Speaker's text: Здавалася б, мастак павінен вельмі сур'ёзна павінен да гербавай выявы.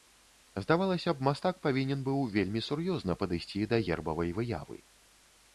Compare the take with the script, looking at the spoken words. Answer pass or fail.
fail